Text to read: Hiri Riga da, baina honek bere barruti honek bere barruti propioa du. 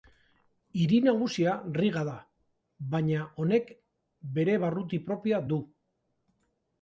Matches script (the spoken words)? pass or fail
fail